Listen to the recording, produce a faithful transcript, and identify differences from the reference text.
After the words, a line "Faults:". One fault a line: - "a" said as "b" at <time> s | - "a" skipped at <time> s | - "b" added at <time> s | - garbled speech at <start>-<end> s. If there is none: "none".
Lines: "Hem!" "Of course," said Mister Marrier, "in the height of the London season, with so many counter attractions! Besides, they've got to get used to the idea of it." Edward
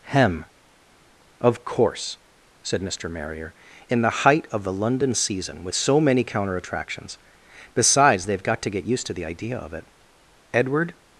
"Hem!" "Of course," said Mister Marrier, "in the height of the London season, with so many counter attractions! Besides, they've got to get used to the idea of it." Edward
Faults:
none